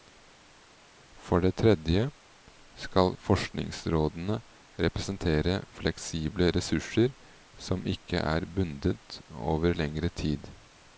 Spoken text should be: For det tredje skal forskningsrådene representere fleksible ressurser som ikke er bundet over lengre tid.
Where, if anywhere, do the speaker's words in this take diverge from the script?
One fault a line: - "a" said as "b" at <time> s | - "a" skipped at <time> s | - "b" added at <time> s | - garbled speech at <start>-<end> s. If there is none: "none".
none